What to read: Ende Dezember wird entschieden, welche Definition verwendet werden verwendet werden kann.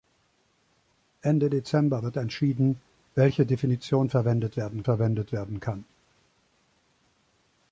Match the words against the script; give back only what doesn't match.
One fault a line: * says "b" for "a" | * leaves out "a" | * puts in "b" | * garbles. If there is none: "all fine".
all fine